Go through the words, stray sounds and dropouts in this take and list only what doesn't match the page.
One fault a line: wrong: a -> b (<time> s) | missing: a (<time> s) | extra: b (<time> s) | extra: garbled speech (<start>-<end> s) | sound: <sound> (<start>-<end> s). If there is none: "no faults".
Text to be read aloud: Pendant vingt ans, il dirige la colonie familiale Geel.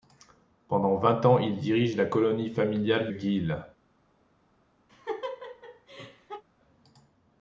sound: laugh (4.9-6.4 s)